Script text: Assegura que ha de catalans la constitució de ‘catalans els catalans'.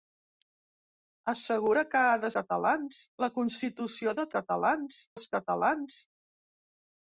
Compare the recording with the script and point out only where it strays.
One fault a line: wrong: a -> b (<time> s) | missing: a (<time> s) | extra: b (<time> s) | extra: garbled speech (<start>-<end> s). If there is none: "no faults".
no faults